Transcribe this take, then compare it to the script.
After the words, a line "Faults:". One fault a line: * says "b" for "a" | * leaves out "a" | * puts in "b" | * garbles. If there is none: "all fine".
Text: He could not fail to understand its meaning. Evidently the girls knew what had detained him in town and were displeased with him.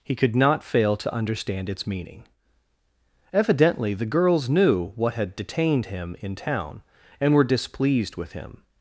He could not fail to understand its meaning. Evidently the girls knew what had detained him in town and were displeased with him.
Faults:
all fine